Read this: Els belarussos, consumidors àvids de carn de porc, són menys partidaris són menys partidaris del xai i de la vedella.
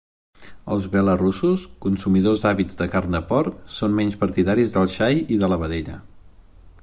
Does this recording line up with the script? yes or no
no